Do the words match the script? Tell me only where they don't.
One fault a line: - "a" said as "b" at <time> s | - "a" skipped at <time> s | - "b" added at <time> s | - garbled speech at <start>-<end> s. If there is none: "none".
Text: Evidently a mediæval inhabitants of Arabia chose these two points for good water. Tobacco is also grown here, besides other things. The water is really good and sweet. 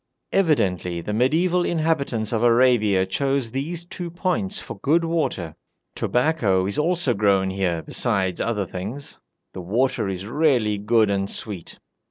- "a" said as "the" at 1.0 s